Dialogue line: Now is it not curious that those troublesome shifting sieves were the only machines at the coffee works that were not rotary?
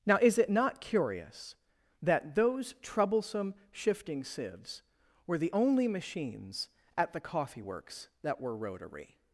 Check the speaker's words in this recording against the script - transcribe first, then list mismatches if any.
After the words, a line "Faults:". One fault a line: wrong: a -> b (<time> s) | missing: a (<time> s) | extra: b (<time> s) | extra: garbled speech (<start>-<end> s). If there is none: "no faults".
Now is it not curious that those troublesome shifting sieves were the only machines at the coffee works that were rotary?
Faults:
missing: not (8.5 s)